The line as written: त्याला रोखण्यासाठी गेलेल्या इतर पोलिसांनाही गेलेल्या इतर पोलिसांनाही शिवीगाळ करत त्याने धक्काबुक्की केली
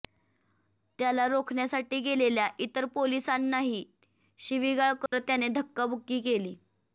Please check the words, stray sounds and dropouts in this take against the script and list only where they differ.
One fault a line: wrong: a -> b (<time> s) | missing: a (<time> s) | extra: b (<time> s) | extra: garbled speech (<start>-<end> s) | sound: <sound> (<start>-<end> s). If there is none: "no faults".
missing: गेलेल्या इतर पोलिसांनाही (3.8 s)
sound: dropout (5.1-5.1 s)